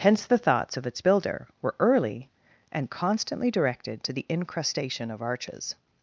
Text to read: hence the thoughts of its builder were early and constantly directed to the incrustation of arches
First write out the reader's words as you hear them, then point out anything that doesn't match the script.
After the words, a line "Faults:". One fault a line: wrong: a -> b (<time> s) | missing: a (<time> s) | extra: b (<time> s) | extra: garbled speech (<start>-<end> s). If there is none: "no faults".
hence the thoughts of its builder were early and constantly directed to the incrustation of arches
Faults:
no faults